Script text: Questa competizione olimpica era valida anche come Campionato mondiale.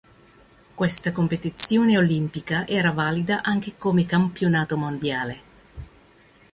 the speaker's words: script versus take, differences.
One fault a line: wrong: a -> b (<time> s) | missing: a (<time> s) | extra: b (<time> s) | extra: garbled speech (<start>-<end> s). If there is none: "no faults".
no faults